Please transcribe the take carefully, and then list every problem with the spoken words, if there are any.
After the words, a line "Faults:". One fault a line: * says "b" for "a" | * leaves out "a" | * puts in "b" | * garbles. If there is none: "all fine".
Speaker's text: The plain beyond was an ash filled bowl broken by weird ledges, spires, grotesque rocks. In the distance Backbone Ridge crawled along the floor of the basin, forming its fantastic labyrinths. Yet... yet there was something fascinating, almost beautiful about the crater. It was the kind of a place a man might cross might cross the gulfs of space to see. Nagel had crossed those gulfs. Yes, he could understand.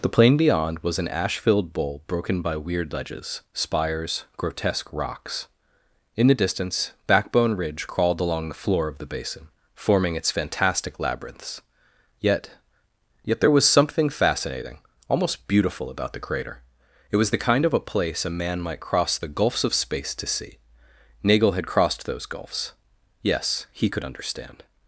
The plain beyond was an ash filled bowl broken by weird ledges, spires, grotesque rocks. In the distance Backbone Ridge crawled along the floor of the basin, forming its fantastic labyrinths. Yet... yet there was something fascinating, almost beautiful about the crater. It was the kind of a place a man might cross the gulfs of space to see. Nagel had crossed those gulfs. Yes, he could understand.
Faults:
* leaves out "might cross"